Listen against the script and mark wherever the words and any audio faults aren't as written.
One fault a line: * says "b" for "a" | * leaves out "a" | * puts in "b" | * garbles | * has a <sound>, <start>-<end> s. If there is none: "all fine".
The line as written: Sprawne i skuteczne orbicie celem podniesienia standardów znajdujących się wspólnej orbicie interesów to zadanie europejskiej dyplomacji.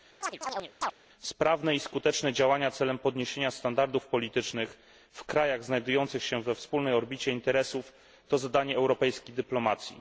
* has a chirp, 0.2-0.9 s
* says "działania" for "orbicie"
* puts in "politycznych w krajach"
* puts in "we"